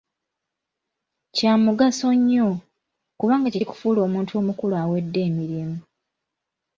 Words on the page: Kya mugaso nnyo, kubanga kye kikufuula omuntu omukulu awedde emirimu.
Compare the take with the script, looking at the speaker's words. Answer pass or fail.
pass